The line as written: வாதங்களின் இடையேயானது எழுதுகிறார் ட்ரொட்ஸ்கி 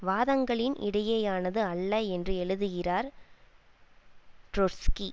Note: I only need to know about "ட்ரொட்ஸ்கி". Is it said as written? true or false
true